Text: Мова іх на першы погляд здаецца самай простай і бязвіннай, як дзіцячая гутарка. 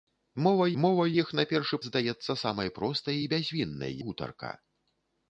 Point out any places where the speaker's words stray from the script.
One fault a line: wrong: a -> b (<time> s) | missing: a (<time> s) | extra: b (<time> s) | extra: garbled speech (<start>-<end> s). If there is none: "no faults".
extra: мова (0.8 s)
missing: погляд (1.8 s)
missing: як дзіцячая (4.0 s)